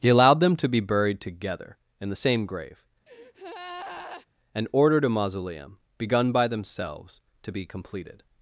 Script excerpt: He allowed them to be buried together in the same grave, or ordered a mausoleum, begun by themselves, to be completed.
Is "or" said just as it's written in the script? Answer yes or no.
no